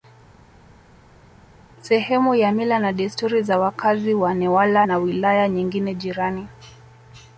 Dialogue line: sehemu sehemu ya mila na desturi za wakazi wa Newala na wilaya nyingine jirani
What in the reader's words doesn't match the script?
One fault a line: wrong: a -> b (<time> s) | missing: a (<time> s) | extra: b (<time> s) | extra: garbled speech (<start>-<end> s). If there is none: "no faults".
missing: sehemu (2.3 s)